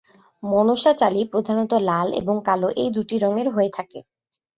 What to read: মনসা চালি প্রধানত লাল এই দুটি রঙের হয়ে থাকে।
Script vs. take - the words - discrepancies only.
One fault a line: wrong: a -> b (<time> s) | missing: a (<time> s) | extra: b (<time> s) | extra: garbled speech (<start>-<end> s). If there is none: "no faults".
extra: এবং কালো (2.2 s)